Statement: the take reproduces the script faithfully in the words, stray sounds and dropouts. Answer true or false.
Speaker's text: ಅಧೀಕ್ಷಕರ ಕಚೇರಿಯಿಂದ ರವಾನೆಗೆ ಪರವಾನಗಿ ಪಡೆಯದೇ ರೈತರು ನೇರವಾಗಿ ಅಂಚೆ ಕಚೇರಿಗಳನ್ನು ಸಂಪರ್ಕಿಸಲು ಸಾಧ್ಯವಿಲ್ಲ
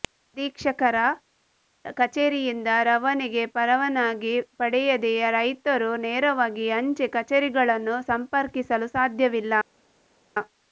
true